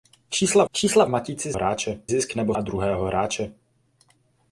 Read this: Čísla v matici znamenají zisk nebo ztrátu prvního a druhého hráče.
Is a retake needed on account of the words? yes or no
yes